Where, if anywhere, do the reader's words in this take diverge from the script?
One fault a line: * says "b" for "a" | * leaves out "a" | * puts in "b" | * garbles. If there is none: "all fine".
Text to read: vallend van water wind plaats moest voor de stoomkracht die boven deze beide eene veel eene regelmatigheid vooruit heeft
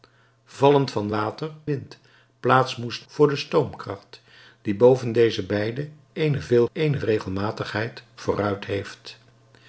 all fine